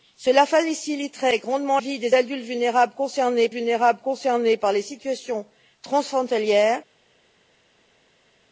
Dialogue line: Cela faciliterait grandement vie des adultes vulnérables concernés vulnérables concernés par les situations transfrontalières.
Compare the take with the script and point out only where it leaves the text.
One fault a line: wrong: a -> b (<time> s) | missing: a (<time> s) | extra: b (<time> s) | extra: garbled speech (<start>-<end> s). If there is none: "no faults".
no faults